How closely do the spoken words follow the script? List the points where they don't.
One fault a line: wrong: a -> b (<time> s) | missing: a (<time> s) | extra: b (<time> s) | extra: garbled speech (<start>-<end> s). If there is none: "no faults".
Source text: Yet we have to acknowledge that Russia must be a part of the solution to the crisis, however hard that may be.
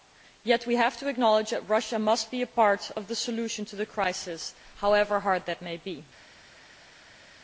no faults